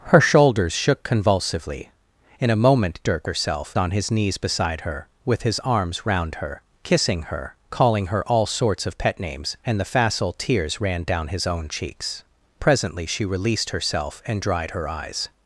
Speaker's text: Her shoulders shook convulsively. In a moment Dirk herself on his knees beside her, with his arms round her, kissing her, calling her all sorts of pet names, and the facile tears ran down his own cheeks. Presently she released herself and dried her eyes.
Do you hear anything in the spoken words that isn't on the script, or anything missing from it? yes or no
no